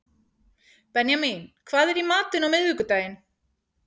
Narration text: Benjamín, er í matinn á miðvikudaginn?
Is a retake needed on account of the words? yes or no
yes